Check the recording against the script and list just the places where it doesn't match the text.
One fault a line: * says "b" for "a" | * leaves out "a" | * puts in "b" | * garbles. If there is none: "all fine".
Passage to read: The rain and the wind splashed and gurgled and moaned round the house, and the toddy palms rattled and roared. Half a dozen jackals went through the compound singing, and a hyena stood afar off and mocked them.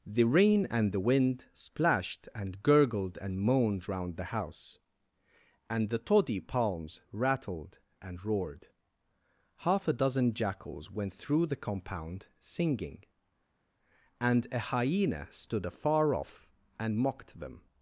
all fine